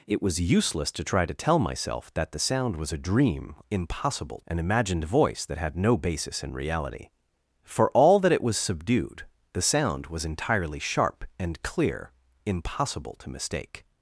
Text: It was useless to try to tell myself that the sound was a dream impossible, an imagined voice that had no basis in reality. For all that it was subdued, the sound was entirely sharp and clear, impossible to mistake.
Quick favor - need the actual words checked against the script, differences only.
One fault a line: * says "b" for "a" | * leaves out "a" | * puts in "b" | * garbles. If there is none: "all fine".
all fine